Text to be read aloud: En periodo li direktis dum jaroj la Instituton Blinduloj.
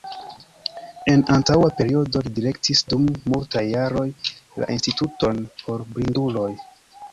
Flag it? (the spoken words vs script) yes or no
yes